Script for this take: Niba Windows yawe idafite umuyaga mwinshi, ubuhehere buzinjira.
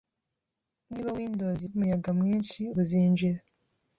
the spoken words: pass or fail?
fail